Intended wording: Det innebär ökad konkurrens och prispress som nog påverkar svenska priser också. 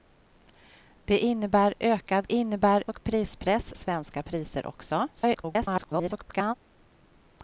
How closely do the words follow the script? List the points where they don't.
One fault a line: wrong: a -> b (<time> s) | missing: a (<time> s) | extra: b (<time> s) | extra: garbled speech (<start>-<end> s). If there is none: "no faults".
wrong: konkurrens -> innebär (2.3 s)
missing: som nog påverkar (3.7 s)
extra: garbled speech (5.2-6.5 s)